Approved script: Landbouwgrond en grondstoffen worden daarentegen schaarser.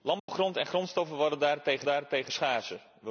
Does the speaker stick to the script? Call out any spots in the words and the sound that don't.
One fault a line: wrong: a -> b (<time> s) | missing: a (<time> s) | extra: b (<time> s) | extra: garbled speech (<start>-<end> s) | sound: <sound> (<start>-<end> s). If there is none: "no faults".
sound: dropout (0.2-0.3 s)
extra: daarentegen (1.8 s)